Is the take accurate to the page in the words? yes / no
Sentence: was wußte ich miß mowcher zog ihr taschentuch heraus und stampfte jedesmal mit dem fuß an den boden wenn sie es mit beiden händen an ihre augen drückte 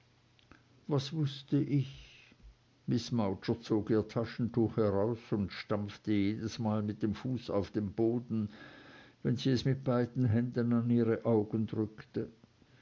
no